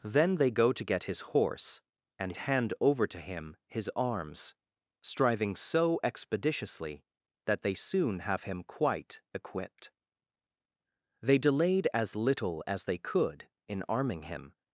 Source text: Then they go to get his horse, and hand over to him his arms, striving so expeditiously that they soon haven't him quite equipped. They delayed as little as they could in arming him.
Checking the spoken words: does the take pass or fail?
fail